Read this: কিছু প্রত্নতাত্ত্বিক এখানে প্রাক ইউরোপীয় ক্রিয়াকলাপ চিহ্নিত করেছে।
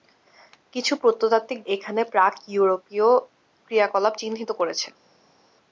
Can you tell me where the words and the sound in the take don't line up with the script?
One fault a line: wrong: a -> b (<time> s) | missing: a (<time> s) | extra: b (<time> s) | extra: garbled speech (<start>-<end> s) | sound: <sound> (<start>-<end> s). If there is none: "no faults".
no faults